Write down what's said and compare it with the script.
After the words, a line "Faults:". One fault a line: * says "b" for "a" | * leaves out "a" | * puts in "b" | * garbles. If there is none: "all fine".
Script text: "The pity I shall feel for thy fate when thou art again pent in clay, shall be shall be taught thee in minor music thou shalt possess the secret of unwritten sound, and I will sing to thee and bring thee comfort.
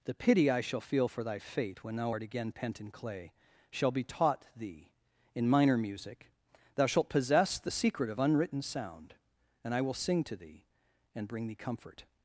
"The pity I shall feel for thy fate when thou art again pent in clay, shall be taught thee in minor music thou shalt possess the secret of unwritten sound, and I will sing to thee and bring thee comfort.
Faults:
* leaves out "shall be"